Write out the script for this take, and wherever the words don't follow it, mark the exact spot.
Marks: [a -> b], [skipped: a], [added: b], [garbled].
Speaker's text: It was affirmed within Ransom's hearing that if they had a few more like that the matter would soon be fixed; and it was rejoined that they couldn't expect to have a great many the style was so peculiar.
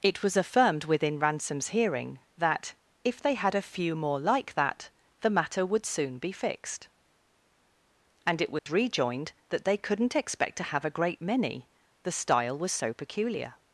It was affirmed within Ransom's hearing that if they had a few more like that the matter would soon be fixed; and it was rejoined that they couldn't expect to have a great many the style was so peculiar.